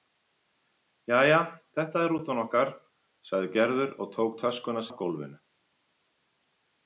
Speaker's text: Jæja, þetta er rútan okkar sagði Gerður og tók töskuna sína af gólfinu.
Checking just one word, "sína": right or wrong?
wrong